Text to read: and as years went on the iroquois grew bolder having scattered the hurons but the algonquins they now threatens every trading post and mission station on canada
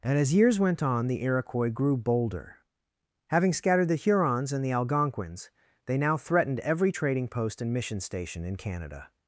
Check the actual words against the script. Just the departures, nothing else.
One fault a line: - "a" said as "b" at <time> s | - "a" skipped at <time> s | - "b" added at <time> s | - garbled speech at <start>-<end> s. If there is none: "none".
- "but" said as "and" at 4.5 s
- "threatens" said as "threatened" at 6.2 s
- "on" said as "in" at 8.4 s